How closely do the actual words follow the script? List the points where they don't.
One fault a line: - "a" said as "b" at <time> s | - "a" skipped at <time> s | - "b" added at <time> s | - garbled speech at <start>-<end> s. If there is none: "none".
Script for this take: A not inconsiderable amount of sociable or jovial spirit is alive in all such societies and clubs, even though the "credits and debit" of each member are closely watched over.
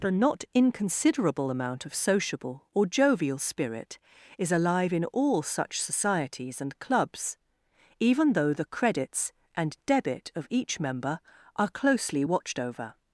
none